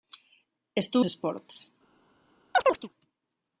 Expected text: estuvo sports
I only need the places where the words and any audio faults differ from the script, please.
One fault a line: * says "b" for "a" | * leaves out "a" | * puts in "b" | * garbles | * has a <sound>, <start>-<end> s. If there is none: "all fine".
* has a chirp, 2.5-2.9 s